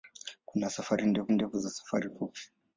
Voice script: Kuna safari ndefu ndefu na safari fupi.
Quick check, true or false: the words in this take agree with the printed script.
true